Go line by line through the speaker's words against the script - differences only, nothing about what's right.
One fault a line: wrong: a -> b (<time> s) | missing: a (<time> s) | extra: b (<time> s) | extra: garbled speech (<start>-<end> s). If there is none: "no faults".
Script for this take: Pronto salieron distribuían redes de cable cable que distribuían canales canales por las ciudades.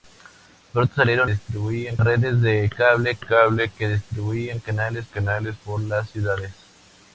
no faults